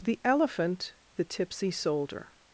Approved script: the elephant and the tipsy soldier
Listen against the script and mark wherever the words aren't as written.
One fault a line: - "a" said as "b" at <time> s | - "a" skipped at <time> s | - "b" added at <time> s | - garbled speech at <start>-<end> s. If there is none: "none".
- "and" skipped at 0.9 s